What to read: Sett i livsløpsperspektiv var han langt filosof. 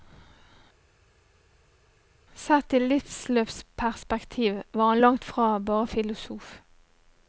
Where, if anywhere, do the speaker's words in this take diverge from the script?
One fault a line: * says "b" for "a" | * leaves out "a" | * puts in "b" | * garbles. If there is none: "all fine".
* puts in "fra bare"